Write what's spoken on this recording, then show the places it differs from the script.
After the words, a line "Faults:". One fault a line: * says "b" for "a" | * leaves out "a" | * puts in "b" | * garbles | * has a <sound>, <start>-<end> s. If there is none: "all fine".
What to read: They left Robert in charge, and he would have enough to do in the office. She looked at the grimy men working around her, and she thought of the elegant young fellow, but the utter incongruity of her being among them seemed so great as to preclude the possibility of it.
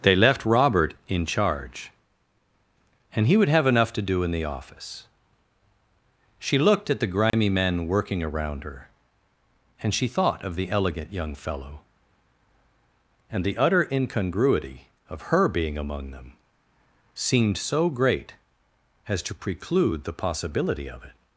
They left Robert in charge, and he would have enough to do in the office. She looked at the grimy men working around her, and she thought of the elegant young fellow, and the utter incongruity of her being among them seemed so great as to preclude the possibility of it.
Faults:
* has a dropout, 7.3-7.3 s
* says "and" for "but"